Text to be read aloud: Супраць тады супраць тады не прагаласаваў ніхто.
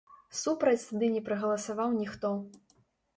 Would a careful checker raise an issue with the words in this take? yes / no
yes